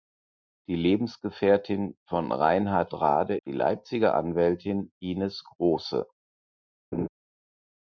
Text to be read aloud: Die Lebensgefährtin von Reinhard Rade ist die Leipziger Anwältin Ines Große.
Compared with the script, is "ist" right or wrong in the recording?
wrong